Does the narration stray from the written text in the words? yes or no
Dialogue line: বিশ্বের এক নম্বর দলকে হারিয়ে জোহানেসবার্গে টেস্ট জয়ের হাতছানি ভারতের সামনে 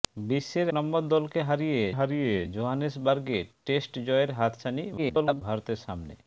yes